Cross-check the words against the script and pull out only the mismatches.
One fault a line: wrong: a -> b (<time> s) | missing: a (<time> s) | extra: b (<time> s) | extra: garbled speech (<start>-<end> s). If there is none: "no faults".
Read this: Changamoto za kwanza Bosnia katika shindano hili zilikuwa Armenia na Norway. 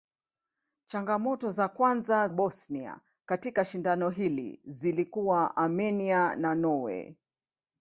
no faults